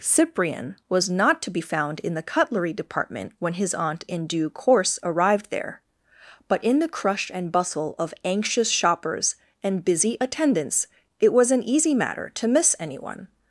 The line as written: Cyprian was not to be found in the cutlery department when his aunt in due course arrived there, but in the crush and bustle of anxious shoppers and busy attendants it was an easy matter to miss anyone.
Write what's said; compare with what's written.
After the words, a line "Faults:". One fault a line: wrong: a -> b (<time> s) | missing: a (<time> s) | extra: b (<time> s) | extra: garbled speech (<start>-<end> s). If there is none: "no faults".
Cyprian was not to be found in the cutlery department when his aunt in due course arrived there, but in the crush and bustle of anxious shoppers and busy attendants it was an easy matter to miss anyone.
Faults:
no faults